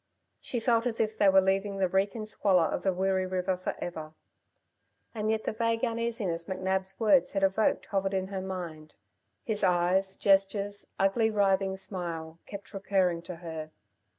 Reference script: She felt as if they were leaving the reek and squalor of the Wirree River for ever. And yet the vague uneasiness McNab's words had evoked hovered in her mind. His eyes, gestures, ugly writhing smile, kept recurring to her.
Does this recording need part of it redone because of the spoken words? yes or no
no